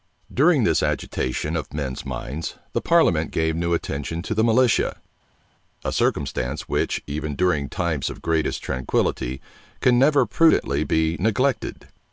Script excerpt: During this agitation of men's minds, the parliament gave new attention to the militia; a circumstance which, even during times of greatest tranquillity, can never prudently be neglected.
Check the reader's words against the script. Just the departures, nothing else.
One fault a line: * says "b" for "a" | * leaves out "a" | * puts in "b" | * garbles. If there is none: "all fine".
all fine